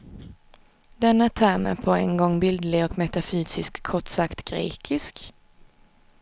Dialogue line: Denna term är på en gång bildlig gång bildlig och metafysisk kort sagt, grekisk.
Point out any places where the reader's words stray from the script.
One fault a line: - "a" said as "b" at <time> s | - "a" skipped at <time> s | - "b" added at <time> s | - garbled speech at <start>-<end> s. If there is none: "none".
- "gång bildlig" skipped at 2.9 s